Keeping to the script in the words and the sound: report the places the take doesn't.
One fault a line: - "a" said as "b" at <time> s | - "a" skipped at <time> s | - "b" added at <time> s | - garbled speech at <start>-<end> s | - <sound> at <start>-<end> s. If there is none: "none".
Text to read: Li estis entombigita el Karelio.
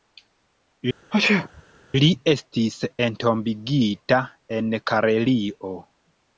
- sneeze at 1.1-1.6 s
- "el" said as "en" at 4.6 s